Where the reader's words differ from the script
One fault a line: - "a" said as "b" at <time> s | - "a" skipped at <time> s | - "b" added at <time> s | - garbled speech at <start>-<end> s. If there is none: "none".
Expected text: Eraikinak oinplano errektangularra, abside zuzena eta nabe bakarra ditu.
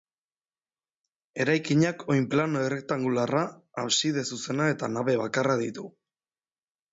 none